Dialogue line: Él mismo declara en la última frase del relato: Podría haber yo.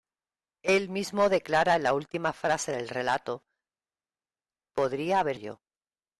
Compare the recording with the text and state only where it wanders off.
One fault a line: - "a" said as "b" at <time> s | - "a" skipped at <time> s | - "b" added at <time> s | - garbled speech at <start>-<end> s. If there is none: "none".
none